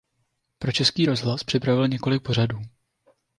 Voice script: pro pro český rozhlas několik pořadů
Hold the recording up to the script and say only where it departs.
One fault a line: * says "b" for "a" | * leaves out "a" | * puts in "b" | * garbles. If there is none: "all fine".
* leaves out "pro"
* puts in "připravil"